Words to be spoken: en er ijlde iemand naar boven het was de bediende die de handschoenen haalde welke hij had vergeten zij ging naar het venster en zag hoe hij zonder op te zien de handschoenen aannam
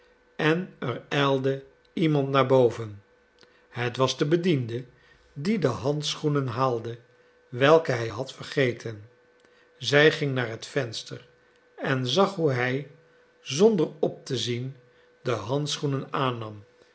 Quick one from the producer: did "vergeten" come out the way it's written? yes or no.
yes